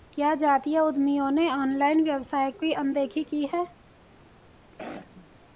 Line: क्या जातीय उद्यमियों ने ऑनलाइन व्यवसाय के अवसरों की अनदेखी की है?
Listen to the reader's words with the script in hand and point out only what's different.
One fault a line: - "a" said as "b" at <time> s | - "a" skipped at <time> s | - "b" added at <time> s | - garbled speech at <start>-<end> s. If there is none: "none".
- "के अवसरों" skipped at 2.5 s